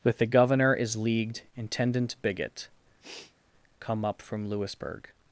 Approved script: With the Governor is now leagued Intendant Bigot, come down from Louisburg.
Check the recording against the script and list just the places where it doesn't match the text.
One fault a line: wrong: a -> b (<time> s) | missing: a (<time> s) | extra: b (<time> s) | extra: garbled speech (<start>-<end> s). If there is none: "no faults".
missing: now (0.9 s)
wrong: down -> up (4.0 s)